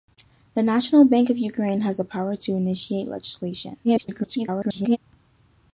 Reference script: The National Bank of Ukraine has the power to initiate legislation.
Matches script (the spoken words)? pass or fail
fail